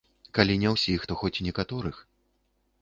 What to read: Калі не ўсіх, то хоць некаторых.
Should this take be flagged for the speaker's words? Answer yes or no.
no